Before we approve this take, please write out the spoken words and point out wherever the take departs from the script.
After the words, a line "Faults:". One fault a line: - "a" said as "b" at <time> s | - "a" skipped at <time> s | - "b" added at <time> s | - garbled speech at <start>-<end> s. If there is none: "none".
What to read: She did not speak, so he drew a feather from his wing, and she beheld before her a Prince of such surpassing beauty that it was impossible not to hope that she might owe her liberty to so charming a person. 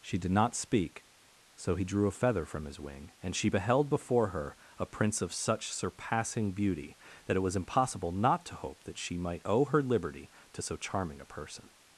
She did not speak, so he drew a feather from his wing, and she beheld before her a Prince of such surpassing beauty that it was impossible not to hope that she might owe her liberty to so charming a person.
Faults:
none